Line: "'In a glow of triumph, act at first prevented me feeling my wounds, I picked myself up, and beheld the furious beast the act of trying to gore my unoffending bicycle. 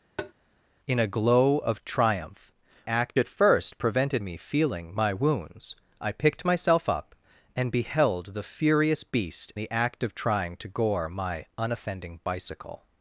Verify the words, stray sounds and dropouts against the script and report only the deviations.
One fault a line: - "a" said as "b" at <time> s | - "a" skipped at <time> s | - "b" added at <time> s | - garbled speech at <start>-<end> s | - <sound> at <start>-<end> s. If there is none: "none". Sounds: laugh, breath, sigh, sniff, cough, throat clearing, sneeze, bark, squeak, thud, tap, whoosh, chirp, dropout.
- tap at 0.2-0.3 s